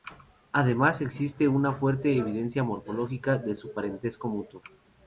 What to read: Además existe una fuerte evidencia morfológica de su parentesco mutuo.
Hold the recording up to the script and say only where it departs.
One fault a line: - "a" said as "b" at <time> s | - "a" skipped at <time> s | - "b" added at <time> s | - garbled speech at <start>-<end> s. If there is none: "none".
none